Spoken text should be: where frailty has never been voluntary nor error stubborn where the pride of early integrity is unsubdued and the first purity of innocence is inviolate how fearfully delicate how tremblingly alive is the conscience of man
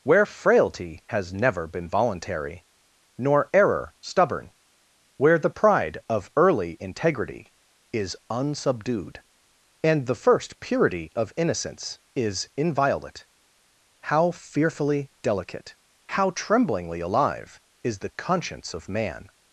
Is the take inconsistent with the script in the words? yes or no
no